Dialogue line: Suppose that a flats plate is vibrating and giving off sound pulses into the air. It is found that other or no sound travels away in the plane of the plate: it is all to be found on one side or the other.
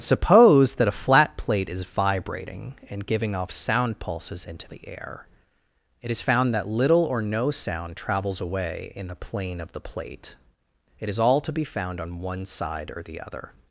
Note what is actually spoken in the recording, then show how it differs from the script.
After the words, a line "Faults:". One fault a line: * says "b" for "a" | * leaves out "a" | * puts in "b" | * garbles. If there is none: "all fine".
Suppose that a flat plate is vibrating and giving off sound pulses into the air. It is found that little or no sound travels away in the plane of the plate: it is all to be found on one side or the other.
Faults:
* says "flat" for "flats"
* says "little" for "other"